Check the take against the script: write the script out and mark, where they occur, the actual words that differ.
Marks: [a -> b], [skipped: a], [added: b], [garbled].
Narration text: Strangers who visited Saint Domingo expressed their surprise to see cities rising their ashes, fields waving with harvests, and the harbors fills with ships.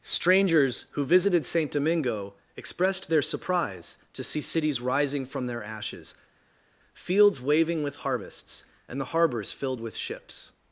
Strangers who visited Saint Domingo expressed their surprise to see cities rising [added: from] their ashes, fields waving with harvests, and the harbors [fills -> filled] with ships.